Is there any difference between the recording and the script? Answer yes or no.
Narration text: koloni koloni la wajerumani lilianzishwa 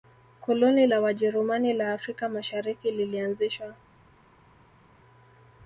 yes